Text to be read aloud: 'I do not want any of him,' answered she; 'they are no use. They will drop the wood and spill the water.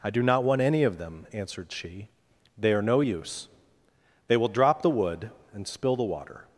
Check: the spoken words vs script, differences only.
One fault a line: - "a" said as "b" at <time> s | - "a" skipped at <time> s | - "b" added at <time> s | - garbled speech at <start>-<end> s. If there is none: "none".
- "him" said as "them" at 1.0 s